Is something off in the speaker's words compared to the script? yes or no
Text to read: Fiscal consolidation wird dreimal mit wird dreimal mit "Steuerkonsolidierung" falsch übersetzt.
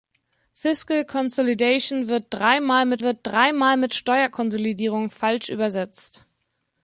no